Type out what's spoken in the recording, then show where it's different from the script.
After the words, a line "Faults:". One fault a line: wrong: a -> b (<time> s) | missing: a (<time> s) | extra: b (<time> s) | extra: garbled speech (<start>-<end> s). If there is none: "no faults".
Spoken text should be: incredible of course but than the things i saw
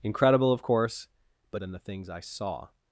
incredible of course but than the things i saw
Faults:
no faults